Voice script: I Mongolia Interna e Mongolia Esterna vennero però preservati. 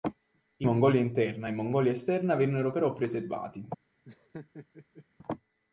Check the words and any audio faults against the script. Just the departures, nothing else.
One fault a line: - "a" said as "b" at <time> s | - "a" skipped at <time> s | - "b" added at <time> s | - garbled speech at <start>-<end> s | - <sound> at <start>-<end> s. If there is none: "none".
- laugh at 4.0-5.1 s